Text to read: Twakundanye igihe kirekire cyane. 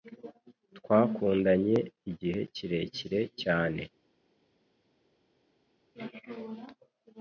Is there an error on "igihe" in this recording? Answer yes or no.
no